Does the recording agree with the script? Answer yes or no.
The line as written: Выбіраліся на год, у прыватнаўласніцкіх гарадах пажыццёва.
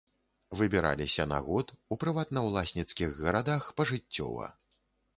yes